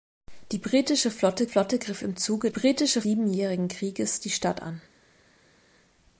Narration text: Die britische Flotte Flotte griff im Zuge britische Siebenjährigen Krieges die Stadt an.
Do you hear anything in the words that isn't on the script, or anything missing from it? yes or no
no